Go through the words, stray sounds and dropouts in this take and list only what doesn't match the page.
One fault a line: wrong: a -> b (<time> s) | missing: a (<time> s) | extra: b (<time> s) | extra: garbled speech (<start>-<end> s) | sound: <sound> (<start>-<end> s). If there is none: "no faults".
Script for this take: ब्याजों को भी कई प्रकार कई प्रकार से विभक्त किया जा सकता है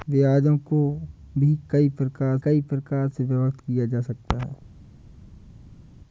no faults